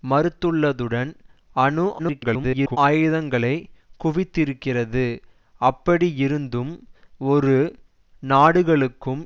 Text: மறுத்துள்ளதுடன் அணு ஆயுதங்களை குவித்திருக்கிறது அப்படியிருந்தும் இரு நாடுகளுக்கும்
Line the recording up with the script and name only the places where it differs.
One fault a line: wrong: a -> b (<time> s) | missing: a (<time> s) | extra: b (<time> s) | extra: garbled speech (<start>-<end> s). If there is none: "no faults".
extra: garbled speech (2.0-2.8 s)